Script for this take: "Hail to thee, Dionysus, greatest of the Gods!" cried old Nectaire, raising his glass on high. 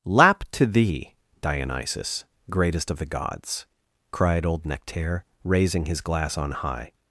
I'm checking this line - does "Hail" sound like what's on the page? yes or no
no